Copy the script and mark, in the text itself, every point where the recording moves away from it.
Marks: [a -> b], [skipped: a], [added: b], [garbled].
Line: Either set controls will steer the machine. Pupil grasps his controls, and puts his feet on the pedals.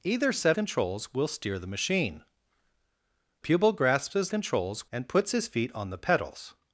Either set controls will steer the machine. Pupil grasps his controls, and puts his feet on the pedals.